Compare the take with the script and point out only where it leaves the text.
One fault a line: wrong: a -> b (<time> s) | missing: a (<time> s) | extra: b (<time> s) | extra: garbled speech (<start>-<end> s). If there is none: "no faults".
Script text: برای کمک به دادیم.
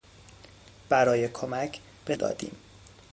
no faults